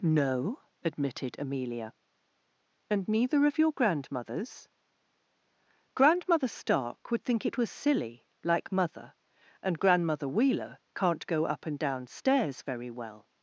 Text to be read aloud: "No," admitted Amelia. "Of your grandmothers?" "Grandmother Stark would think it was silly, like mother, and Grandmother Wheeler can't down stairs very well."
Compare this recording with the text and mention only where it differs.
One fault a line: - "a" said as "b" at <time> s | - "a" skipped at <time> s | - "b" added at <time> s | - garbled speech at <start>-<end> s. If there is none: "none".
- "And neither" added at 2.9 s
- "go up and" added at 11.3 s